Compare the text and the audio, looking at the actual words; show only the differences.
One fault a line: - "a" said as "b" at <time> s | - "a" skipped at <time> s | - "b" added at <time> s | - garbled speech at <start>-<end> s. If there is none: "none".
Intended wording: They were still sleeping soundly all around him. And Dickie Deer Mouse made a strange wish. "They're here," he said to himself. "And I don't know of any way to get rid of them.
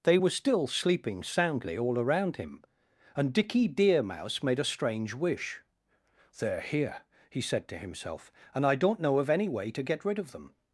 none